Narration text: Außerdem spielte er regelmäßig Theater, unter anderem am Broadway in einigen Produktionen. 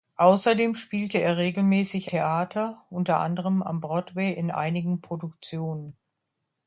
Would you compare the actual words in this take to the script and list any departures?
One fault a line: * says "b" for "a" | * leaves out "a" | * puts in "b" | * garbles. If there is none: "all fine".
all fine